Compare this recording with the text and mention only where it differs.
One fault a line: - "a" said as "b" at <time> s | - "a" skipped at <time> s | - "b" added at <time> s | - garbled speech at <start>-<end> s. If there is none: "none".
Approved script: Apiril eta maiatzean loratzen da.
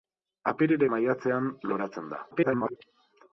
- "eta" skipped at 0.9 s
- garbled speech at 2.3-2.8 s